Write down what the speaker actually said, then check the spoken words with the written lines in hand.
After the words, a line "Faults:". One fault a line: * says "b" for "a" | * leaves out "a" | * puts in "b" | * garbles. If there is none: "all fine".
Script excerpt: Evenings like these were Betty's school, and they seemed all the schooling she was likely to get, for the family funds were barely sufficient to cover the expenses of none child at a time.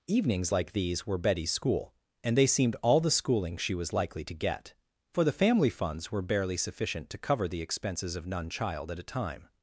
Evenings like these were Betty's school, and they seemed all the schooling she was likely to get, for the family funds were barely sufficient to cover the expenses of none child at a time.
Faults:
all fine